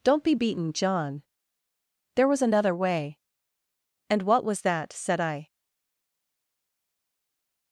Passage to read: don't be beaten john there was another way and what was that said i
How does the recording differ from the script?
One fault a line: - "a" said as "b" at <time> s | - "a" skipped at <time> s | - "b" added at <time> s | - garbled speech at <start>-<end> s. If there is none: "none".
none